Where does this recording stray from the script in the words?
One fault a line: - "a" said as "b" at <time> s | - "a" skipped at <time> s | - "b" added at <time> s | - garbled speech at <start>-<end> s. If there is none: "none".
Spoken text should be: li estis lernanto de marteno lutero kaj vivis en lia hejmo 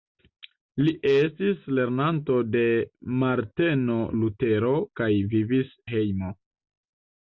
- "en lia" skipped at 5.7 s